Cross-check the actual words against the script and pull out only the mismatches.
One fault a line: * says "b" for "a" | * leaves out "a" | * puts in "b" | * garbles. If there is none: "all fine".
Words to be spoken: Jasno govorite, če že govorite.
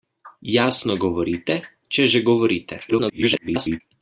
* garbles